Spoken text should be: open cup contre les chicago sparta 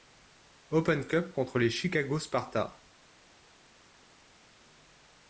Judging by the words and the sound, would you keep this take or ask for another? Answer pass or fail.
pass